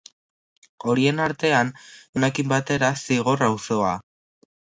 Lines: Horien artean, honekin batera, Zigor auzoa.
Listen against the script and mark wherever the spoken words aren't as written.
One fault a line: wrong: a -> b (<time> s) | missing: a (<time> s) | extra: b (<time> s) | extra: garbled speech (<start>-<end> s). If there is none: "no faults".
no faults